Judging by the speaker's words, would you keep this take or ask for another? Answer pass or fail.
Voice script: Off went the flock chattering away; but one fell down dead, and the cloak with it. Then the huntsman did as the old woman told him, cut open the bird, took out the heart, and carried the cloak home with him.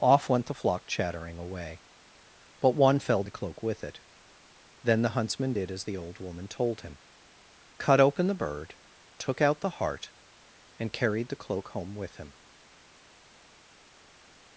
fail